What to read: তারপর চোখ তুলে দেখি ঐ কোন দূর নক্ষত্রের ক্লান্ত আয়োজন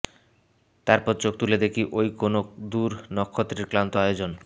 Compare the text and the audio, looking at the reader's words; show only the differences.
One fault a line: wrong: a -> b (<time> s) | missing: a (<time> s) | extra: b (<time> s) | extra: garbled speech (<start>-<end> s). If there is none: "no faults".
no faults